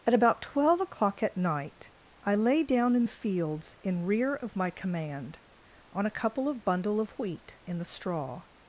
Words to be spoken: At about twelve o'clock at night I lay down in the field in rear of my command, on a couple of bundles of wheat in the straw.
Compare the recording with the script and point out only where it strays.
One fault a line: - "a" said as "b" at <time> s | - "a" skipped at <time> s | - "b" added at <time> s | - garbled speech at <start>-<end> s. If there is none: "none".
- "field" said as "fields" at 3.1 s
- "bundles" said as "bundle" at 6.6 s